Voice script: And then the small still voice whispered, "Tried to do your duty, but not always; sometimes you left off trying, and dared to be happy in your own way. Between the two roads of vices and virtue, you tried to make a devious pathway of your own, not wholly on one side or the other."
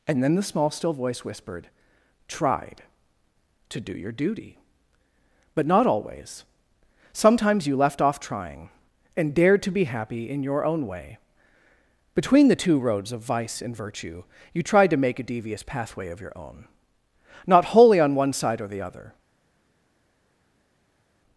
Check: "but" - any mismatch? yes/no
no